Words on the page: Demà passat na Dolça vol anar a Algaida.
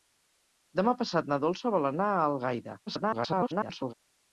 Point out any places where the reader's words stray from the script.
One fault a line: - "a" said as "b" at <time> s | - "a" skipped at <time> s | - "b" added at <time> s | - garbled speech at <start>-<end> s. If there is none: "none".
- garbled speech at 2.9-3.9 s